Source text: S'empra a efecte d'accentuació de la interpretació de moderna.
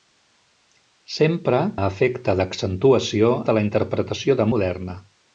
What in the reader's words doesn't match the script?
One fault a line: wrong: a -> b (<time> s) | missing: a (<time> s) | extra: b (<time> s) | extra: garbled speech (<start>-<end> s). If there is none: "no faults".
no faults